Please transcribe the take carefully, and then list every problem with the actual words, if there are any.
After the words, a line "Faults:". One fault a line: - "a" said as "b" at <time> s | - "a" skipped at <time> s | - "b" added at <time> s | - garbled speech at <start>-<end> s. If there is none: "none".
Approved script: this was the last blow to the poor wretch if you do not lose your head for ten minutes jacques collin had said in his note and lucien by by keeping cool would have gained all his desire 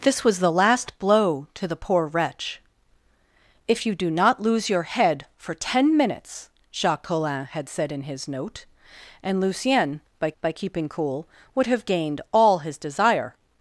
this was the last blow to the poor wretch if you do not lose your head for ten minutes jacques collin had said in his note and lucien by by keeping cool would have gained all his desire
Faults:
none